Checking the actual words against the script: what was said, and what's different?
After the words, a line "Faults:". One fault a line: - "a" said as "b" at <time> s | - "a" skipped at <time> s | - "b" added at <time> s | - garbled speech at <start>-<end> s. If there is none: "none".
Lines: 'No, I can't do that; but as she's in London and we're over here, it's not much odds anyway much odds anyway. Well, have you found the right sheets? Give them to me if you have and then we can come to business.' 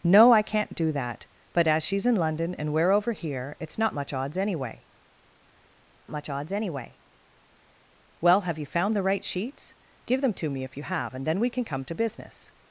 'No, I can't do that; but as she's in London and we're over here, it's not much odds anyway much odds anyway. Well, have you found the right sheets? Give them to me if you have and then we can come to business.'
Faults:
none